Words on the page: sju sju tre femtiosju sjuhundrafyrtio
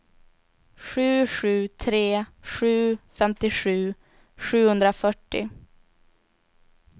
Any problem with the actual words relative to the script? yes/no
yes